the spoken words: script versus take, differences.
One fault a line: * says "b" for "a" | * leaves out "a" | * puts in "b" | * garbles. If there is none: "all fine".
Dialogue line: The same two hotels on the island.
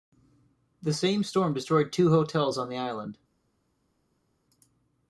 * puts in "storm destroyed"